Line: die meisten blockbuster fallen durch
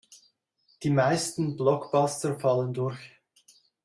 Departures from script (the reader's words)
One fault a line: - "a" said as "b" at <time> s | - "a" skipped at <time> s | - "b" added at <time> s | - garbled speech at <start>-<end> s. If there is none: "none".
none